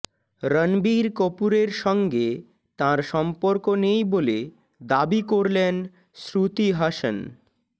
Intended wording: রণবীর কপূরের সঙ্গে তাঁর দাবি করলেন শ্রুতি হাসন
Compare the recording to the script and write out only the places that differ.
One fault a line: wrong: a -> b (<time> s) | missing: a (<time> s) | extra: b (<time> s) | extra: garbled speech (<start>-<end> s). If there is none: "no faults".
extra: সম্পর্ক নেই বলে (3.1 s)